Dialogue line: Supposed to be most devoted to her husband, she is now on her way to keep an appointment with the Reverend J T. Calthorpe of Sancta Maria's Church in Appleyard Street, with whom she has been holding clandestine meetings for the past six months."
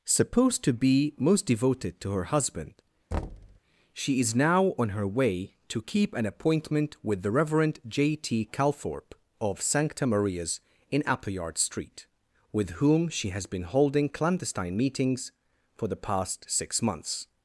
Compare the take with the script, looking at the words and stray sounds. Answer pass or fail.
fail